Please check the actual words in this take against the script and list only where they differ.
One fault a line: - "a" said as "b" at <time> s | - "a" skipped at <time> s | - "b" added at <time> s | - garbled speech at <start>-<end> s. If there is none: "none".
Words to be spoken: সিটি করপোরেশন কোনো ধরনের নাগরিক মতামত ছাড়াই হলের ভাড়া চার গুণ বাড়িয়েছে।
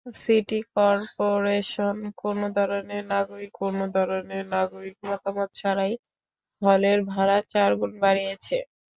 - "কোনো ধরনের নাগরিক" added at 3.5 s